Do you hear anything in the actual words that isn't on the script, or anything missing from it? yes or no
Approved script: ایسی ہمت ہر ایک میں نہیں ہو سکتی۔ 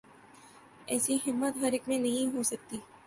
no